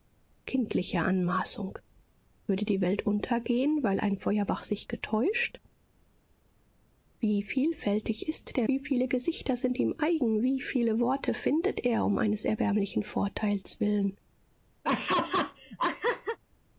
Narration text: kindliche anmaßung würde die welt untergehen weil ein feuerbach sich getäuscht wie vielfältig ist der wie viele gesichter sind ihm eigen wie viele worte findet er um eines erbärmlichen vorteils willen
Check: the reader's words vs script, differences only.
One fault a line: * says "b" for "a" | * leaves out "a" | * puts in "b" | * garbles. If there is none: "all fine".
all fine